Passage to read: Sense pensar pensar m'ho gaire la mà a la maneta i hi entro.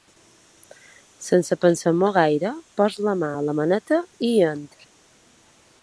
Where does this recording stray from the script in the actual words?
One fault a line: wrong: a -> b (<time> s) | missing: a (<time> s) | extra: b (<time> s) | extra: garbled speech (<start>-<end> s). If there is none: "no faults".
missing: pensar (1.9 s)
extra: poso (2.8 s)